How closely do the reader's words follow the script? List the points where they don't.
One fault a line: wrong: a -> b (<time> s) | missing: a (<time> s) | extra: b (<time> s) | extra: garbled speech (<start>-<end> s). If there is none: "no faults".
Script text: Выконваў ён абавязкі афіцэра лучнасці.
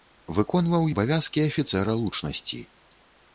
missing: ён (0.9 s)